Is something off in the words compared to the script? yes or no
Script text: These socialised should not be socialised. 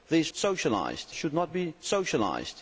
no